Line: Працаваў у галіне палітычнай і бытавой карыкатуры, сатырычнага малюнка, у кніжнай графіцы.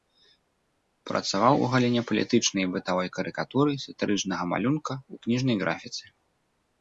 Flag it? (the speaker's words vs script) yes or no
no